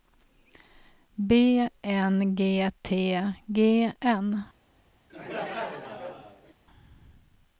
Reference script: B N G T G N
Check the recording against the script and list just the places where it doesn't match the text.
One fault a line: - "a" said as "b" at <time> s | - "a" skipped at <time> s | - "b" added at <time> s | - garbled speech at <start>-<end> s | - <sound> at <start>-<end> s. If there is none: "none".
- laugh at 5.1-6.5 s